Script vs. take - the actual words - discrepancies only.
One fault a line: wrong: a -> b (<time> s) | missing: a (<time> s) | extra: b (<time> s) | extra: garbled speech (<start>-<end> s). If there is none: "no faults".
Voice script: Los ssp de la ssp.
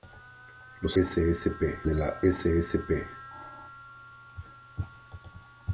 no faults